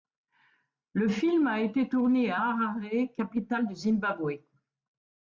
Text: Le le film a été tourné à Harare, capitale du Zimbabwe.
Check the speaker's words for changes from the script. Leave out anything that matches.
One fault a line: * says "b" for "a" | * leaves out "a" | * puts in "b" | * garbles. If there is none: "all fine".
* leaves out "le"